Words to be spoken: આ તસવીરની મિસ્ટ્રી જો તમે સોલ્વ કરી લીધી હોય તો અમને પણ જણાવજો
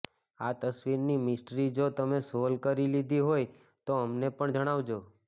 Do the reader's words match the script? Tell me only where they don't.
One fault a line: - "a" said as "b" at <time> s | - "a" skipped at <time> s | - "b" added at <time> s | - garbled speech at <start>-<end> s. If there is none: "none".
none